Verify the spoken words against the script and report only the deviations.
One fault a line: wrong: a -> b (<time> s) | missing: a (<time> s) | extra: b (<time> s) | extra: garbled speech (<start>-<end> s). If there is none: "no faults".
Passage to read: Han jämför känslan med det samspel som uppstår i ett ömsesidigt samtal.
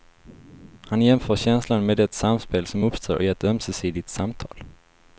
no faults